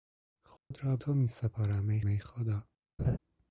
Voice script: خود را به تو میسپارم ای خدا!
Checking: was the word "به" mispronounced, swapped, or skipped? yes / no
yes